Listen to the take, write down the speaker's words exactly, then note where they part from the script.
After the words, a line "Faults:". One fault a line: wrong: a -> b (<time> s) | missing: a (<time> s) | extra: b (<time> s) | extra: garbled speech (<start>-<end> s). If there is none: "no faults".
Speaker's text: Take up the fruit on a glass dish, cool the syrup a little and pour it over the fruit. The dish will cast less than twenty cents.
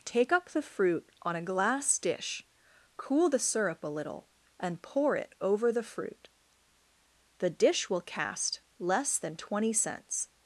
Take up the fruit on a glass dish, cool the syrup a little and pour it over the fruit. The dish will cast less than twenty cents.
Faults:
no faults